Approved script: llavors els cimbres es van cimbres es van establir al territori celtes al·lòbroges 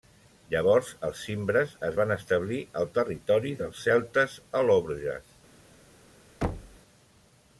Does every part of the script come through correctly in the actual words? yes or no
no